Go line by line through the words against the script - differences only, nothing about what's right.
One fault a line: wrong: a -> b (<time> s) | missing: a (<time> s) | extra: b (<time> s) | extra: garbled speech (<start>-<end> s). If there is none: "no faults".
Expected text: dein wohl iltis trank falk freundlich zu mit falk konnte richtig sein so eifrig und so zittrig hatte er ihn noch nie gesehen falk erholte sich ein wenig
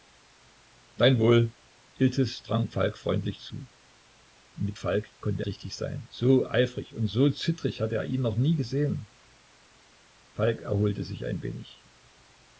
no faults